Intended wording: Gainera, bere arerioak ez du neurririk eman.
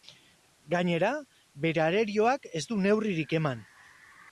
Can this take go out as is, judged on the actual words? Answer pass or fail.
pass